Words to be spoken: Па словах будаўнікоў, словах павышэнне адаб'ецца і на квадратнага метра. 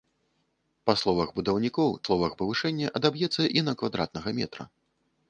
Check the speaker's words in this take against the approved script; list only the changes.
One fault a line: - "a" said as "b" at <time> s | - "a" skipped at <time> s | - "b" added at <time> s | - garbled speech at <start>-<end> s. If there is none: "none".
none